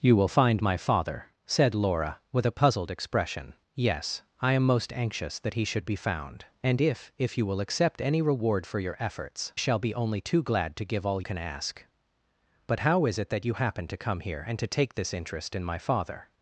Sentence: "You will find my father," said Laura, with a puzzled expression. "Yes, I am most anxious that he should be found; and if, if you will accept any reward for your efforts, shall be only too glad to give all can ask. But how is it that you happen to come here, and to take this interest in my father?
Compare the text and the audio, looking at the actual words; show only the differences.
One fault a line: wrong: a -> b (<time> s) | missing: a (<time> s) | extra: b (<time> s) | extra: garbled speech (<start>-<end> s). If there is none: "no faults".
no faults